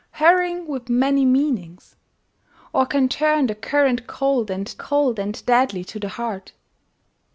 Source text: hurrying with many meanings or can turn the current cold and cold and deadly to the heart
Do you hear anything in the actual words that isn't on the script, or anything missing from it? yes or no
no